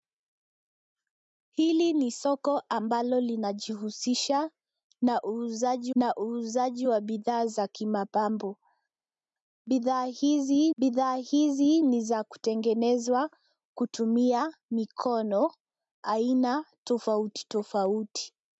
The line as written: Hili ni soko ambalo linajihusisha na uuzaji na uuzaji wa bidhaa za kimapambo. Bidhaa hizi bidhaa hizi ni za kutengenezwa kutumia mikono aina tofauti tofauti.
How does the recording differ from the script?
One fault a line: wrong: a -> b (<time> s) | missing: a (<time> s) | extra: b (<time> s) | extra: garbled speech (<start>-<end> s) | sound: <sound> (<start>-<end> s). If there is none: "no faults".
no faults